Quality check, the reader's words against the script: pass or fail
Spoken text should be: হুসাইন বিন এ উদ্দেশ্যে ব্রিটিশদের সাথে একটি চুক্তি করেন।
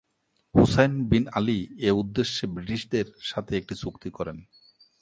fail